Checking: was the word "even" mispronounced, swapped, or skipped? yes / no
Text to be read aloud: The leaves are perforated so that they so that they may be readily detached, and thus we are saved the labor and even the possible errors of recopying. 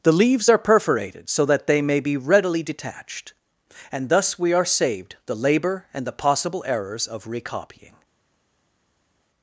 yes